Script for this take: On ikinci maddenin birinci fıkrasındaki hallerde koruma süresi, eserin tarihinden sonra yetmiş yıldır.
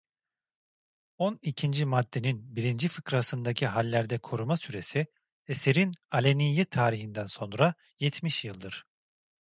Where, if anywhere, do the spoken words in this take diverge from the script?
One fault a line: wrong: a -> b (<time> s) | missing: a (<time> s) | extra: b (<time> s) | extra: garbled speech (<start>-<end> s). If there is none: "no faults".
extra: aleniyet (6.1 s)